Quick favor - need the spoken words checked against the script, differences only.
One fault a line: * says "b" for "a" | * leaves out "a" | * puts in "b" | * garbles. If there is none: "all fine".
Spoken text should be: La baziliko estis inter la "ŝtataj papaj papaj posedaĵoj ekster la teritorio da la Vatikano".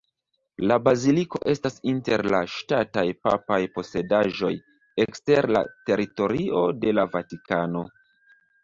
* says "estas" for "estis"
* leaves out "papaj"
* says "de" for "da"